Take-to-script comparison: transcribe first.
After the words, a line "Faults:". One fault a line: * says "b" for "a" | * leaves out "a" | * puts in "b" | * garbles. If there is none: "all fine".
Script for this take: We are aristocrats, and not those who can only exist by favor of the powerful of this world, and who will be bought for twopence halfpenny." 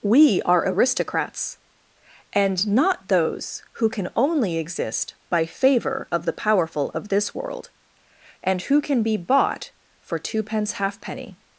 We are aristocrats, and not those who can only exist by favor of the powerful of this world, and who can be bought for twopence halfpenny."
Faults:
* says "can" for "will"